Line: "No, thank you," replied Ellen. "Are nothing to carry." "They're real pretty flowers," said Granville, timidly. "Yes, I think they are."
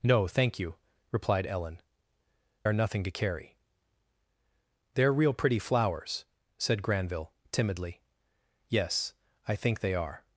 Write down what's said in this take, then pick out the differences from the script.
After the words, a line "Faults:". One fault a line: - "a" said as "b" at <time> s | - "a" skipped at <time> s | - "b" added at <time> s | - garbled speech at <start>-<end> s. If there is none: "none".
"No, thank you," replied Ellen. "Are nothing to carry." "They're real pretty flowers," said Granville, timidly. "Yes, I think they are."
Faults:
none